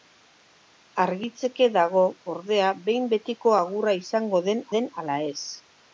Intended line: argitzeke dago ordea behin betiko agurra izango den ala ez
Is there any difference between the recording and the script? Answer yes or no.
yes